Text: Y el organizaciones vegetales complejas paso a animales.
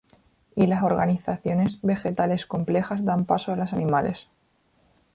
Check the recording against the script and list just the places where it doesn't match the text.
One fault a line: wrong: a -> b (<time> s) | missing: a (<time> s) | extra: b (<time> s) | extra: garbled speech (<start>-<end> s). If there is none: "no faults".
wrong: el -> las (0.7 s)
extra: dan (3.0 s)
extra: las (3.6 s)